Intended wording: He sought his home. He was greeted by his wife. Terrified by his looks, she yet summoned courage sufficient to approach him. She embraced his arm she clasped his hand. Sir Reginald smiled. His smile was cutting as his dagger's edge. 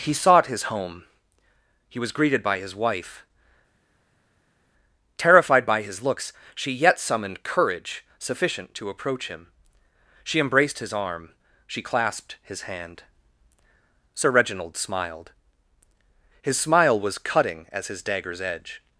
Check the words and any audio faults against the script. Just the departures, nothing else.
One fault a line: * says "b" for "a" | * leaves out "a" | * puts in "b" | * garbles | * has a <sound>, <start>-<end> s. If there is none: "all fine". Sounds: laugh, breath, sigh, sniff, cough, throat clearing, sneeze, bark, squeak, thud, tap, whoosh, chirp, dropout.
all fine